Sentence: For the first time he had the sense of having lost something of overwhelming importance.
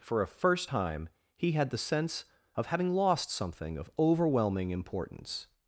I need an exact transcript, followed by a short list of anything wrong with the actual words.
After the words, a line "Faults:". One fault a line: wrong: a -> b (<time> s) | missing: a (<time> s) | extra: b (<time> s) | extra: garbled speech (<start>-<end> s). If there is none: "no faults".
For a first time he had the sense of having lost something of overwhelming importance.
Faults:
wrong: the -> a (0.2 s)